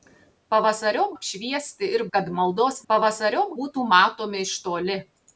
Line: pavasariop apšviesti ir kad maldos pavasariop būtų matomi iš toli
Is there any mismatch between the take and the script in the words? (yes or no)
no